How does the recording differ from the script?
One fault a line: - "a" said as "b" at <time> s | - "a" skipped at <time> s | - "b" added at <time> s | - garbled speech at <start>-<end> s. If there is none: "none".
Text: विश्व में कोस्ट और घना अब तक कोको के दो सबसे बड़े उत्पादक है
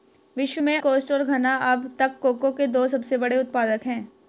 none